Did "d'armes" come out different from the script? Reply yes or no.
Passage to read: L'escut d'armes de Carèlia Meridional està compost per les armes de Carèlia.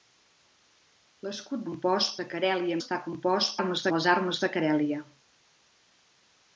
yes